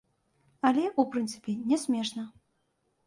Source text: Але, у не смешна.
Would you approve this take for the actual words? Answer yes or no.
no